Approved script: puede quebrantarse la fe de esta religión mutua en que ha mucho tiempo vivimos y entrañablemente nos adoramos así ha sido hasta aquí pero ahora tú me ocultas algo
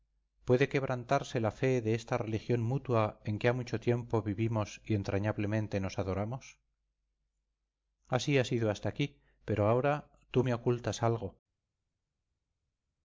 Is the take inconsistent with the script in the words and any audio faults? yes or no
no